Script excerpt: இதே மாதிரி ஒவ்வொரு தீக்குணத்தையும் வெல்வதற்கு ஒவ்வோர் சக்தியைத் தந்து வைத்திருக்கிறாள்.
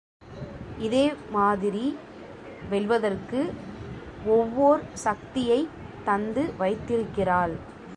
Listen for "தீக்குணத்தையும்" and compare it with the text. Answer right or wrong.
wrong